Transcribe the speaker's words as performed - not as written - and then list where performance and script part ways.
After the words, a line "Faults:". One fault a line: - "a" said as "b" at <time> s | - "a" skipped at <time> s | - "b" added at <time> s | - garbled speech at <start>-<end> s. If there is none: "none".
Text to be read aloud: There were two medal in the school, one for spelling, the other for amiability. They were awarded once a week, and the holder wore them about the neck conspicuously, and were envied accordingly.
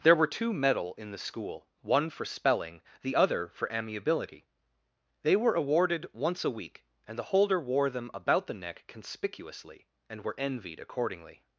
There were two medal in the school, one for spelling, the other for amiability. They were awarded once a week, and the holder wore them about the neck conspicuously, and were envied accordingly.
Faults:
none